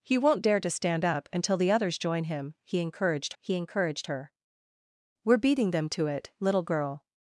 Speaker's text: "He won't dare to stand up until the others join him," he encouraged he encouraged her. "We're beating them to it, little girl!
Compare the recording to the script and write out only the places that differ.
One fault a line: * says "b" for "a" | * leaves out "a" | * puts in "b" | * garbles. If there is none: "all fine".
all fine